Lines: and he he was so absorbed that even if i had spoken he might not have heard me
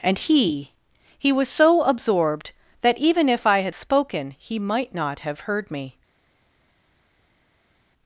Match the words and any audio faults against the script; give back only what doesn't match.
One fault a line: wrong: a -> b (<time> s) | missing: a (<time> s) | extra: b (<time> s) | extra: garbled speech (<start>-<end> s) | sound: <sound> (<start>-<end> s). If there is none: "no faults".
no faults